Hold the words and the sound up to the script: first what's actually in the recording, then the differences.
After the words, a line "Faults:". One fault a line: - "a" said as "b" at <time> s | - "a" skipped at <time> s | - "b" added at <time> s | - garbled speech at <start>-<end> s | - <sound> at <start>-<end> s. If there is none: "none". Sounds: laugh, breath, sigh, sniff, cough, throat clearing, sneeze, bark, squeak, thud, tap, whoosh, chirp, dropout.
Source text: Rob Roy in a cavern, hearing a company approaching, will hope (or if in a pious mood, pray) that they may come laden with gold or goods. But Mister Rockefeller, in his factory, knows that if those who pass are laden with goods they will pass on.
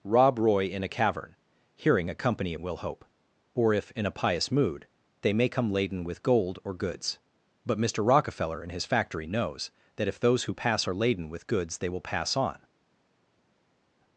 Rob Roy in a cavern, hearing a company will hope (or if in a pious mood, they may come laden with gold or goods. But Mister Rockefeller, in his factory, knows that if those who pass are laden with goods they will pass on.
Faults:
- "approaching" skipped at 2.5 s
- "pray that" skipped at 4.9 s